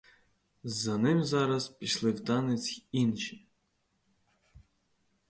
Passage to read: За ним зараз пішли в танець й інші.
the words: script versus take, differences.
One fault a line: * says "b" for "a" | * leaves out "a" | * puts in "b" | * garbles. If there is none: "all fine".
all fine